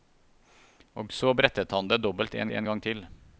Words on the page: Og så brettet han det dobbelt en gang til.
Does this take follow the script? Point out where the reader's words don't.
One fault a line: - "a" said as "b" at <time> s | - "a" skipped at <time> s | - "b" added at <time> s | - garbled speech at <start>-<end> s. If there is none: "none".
- "en" added at 2.5 s